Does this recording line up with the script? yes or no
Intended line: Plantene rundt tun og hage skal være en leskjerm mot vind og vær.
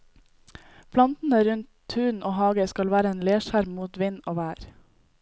yes